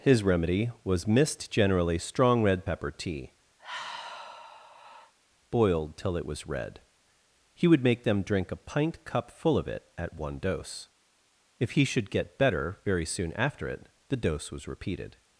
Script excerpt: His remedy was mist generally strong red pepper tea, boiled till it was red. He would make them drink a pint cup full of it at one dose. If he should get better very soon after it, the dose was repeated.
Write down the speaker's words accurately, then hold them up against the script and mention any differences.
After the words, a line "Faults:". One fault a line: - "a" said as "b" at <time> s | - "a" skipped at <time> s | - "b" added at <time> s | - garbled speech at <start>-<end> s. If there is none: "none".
His remedy was mist generally strong red pepper tea, boiled till it was red. He would make them drink a pint cup full of it at one dose. If he should get better very soon after it, the dose was repeated.
Faults:
none